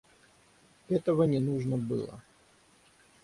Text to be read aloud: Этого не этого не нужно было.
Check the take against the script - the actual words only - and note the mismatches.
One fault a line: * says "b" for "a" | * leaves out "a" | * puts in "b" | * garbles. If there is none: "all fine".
* leaves out "этого не"